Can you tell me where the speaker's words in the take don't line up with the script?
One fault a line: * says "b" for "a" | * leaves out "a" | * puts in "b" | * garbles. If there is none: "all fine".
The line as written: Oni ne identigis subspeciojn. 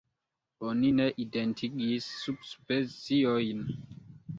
all fine